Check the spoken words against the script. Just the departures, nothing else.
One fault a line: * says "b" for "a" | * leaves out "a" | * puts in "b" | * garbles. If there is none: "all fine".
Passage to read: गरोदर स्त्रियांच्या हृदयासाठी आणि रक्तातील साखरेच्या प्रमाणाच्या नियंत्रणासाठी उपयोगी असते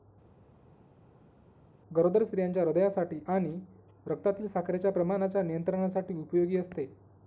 all fine